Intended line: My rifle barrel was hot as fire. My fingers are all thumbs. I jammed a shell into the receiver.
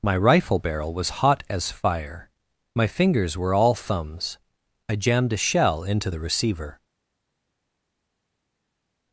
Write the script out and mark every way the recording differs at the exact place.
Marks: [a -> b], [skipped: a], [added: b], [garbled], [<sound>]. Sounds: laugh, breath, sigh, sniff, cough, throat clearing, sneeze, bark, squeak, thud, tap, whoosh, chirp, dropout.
My rifle barrel was hot as fire. My fingers [are -> were] all thumbs. I jammed a shell into the receiver.